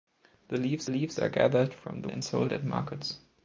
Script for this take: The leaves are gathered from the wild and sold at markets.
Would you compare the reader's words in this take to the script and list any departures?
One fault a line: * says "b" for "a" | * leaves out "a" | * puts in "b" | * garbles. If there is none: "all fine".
* puts in "leaves"
* leaves out "wild"